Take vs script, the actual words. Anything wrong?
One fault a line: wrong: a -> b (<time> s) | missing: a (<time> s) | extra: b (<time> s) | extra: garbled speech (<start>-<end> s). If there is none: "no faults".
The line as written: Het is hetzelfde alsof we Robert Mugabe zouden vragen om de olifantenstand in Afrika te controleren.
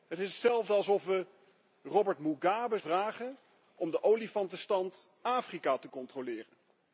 missing: zouden (2.8 s)
missing: in (5.1 s)